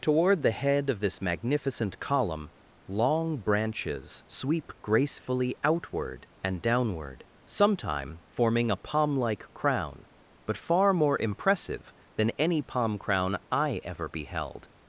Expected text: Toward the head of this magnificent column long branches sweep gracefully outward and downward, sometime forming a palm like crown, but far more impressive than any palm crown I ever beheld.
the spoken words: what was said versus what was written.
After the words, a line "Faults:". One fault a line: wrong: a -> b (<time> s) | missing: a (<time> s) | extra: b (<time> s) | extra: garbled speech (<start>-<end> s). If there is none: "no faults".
Toward the head of this magnificent column long branches sweep gracefully outward and downward, sometime forming a palm like crown, but far more impressive than any palm crown I ever beheld.
Faults:
no faults